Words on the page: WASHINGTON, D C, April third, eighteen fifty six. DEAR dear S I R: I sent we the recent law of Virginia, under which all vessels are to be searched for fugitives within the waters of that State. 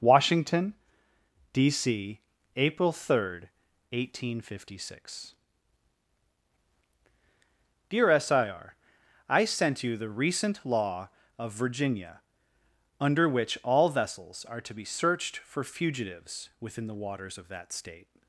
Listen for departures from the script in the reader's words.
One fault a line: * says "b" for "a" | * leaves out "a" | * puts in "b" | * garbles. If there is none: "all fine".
* leaves out "dear"
* says "you" for "we"